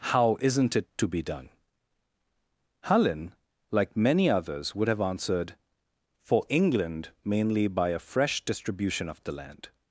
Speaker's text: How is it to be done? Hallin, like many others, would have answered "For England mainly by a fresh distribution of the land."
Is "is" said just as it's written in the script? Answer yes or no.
no